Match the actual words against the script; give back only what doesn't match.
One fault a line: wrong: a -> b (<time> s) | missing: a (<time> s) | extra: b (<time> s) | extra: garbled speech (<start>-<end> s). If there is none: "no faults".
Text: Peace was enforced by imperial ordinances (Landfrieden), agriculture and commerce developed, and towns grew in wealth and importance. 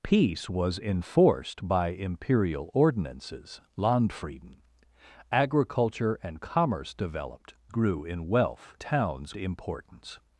missing: and towns (7.5 s)
wrong: and -> towns (8.8 s)